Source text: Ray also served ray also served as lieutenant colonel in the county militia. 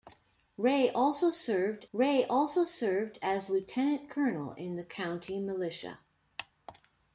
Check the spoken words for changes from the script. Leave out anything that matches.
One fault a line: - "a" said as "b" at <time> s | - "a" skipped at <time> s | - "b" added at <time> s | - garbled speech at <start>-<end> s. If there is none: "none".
none